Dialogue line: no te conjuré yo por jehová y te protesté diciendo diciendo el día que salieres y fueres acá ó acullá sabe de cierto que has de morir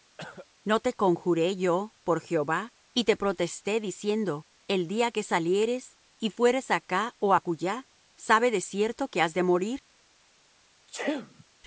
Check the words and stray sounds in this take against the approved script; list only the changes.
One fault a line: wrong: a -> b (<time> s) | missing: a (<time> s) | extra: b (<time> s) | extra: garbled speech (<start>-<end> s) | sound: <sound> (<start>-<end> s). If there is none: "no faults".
sound: cough (0.2-0.5 s)
missing: diciendo (4.5 s)
sound: sneeze (10.9-11.4 s)